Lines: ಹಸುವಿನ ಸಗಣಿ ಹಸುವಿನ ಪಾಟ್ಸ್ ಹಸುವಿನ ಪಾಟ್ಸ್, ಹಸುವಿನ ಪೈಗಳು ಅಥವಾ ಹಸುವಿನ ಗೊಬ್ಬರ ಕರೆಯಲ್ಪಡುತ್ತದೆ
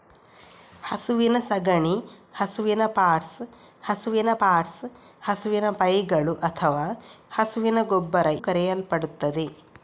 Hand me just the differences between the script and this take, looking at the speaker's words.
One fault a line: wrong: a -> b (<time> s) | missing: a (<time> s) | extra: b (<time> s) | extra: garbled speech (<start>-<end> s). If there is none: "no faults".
no faults